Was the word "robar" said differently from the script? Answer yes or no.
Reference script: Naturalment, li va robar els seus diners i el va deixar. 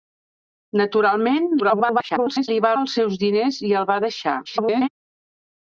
yes